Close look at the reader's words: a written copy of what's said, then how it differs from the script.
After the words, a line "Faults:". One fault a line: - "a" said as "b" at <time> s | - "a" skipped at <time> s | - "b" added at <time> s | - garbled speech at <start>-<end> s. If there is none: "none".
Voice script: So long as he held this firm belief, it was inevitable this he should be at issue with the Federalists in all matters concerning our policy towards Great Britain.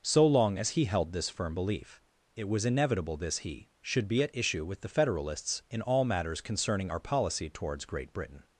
So long as he held this firm belief, it was inevitable this he should be at issue with the Federalists in all matters concerning our policy towards Great Britain.
Faults:
none